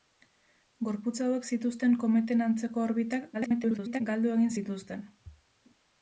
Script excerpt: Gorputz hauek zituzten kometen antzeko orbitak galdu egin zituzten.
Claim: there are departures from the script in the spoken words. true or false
true